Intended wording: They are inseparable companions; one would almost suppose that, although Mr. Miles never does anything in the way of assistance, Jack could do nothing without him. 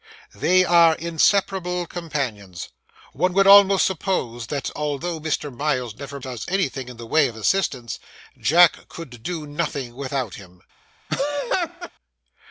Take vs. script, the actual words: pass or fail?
pass